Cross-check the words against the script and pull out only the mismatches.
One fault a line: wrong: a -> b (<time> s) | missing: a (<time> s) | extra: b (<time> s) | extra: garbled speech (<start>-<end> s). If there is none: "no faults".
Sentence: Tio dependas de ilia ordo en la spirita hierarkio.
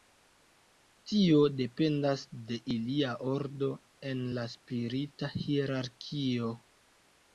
no faults